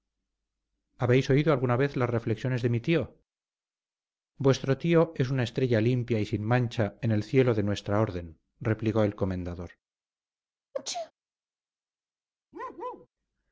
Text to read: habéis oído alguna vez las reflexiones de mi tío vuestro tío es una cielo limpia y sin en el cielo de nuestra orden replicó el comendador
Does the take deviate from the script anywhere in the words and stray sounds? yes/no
yes